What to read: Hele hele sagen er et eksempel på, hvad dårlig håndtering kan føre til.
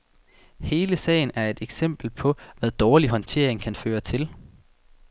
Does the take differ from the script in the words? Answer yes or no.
yes